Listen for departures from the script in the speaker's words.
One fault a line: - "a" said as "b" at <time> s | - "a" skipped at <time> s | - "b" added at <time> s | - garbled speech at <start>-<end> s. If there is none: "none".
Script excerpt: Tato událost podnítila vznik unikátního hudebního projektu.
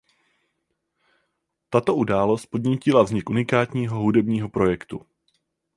none